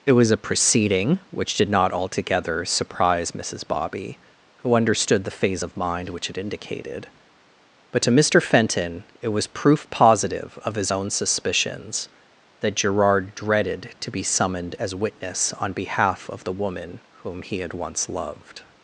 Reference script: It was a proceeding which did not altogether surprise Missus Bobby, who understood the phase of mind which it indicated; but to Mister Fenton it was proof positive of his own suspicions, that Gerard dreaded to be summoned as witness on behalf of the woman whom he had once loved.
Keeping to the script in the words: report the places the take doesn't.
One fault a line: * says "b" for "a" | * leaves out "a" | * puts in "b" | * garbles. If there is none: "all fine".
all fine